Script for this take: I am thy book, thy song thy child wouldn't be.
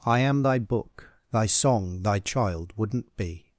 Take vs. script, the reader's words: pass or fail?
pass